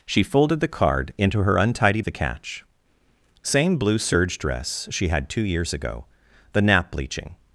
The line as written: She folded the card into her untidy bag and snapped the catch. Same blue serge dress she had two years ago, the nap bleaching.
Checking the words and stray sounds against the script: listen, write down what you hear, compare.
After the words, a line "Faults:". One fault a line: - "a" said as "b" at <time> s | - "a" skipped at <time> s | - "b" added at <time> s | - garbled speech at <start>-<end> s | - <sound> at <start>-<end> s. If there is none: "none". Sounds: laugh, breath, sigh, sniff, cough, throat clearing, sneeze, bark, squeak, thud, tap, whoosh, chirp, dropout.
She folded the card into her untidy the catch. Same blue serge dress she had two years ago, the nap bleaching.
Faults:
- "bag and snapped" skipped at 2.0 s